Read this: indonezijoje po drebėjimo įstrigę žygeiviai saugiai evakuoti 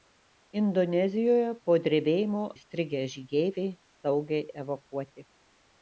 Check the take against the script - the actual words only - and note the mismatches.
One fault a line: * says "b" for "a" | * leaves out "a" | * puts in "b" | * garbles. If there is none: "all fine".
all fine